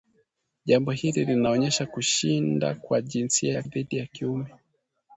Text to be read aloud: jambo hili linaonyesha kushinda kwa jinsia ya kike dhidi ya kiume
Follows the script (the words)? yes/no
no